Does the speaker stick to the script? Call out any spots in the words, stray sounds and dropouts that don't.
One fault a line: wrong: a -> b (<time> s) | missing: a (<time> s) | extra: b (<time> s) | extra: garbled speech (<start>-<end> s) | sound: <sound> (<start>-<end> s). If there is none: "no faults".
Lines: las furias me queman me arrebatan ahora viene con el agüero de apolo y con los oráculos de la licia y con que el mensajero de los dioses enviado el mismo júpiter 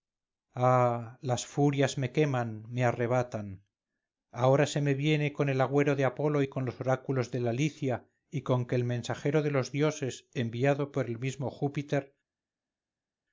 extra: se me (4.7 s)
extra: por (10.9 s)